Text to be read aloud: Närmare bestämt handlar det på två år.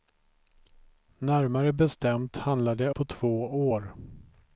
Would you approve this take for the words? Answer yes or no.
yes